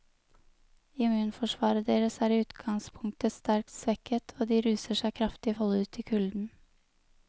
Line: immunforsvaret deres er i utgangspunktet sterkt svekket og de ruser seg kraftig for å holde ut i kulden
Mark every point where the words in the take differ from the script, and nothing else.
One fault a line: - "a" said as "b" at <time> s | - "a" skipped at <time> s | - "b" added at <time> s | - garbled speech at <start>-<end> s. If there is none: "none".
- "for" skipped at 5.5 s